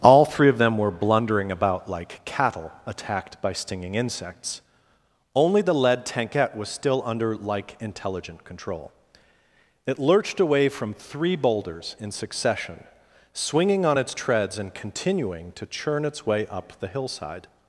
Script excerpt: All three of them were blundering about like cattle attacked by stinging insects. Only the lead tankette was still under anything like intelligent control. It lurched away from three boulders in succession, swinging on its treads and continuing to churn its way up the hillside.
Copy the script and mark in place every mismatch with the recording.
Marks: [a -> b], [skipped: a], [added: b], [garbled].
All three of them were blundering about like cattle attacked by stinging insects. Only the lead tankette was still under [skipped: anything] like intelligent control. It lurched away from three boulders in succession, swinging on its treads and continuing to churn its way up the hillside.